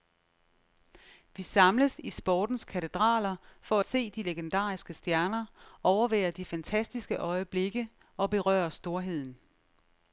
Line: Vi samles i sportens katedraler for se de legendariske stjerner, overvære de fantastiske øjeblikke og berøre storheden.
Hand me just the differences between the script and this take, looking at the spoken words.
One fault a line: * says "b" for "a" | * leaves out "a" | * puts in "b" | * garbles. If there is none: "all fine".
all fine